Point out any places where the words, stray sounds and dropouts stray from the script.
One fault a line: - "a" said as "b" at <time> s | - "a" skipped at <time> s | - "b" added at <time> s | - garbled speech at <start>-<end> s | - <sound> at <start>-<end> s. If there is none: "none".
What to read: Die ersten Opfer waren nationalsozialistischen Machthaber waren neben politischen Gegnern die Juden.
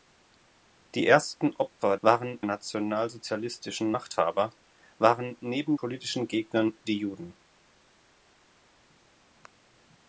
none